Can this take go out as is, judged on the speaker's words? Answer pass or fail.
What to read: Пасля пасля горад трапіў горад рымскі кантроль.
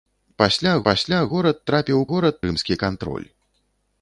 pass